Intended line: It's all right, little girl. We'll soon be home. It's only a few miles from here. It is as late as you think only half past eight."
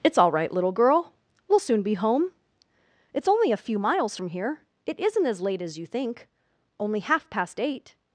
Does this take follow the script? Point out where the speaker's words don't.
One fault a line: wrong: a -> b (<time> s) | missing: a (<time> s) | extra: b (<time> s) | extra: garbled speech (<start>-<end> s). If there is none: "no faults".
wrong: is -> isn't (5.0 s)